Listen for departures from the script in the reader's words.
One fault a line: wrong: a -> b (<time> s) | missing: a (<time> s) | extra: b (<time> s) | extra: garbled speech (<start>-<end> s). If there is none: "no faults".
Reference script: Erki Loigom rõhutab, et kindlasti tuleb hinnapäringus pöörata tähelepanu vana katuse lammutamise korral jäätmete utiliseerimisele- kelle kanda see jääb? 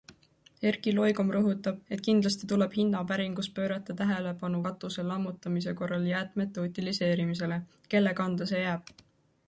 missing: vana (4.6 s)